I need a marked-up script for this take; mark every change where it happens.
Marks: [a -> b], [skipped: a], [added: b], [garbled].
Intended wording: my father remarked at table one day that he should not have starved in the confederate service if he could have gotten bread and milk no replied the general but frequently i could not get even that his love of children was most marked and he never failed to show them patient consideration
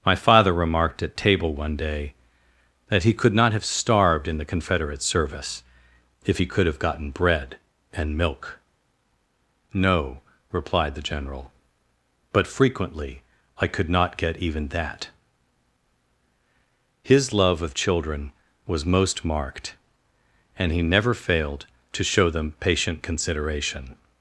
my father remarked at table one day that he [should -> could] not have starved in the confederate service if he could have gotten bread and milk no replied the general but frequently i could not get even that his love of children was most marked and he never failed to show them patient consideration